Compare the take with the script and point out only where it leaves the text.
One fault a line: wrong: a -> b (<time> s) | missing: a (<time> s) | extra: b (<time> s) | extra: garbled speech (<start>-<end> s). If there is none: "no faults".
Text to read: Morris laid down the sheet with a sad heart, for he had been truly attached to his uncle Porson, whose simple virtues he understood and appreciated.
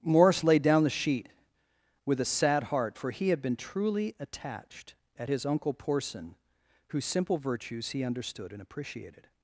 wrong: to -> at (5.2 s)